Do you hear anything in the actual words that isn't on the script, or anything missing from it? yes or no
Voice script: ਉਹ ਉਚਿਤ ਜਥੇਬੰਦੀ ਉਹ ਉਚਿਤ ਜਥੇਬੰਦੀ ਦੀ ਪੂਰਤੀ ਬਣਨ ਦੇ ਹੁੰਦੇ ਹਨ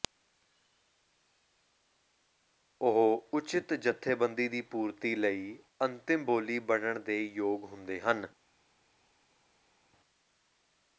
yes